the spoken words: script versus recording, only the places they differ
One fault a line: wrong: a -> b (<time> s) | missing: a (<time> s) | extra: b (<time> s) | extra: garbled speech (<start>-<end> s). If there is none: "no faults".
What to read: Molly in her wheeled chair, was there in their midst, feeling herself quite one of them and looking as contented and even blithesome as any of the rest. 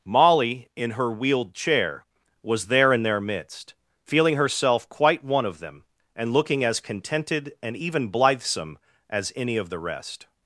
no faults